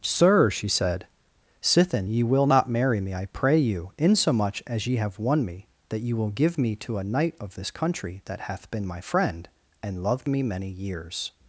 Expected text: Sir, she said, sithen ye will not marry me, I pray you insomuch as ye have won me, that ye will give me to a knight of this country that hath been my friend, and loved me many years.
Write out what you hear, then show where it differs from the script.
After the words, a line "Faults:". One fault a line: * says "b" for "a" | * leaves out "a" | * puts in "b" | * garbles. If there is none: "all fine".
Sir, she said, sithen ye will not marry me, I pray you insomuch as ye have won me, that ye will give me to a knight of this country that hath been my friend, and loved me many years.
Faults:
all fine